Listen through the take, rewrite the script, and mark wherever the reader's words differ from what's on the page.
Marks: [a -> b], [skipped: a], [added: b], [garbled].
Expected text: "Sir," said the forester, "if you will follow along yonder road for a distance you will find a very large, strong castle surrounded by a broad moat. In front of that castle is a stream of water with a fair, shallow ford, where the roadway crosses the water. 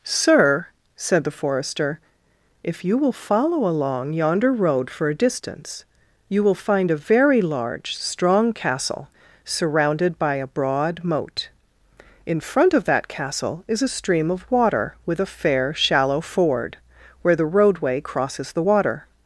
"Sir," said the forester, "if you will follow along yonder road for a distance you will find a very large, strong castle surrounded by a broad moat. In front of that castle is a stream of water with a fair, shallow ford, where the roadway crosses the water.